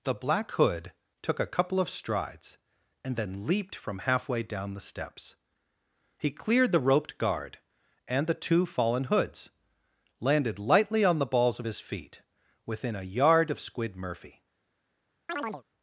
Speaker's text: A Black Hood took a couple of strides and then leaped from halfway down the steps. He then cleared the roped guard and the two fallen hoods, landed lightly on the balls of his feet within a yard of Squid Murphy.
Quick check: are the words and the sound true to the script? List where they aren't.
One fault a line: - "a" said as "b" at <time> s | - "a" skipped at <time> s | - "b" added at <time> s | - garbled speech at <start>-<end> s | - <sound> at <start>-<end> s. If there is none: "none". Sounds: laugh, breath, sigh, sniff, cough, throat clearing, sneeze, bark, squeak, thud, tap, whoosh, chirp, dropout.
- "A" said as "The" at 0.0 s
- "then" skipped at 6.3 s
- chirp at 15.3-15.6 s